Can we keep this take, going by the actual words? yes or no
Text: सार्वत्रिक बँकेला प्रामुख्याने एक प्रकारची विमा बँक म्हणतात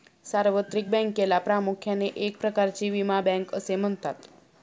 no